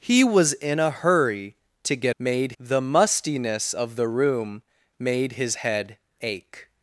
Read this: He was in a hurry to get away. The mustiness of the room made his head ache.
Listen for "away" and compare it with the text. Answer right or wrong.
wrong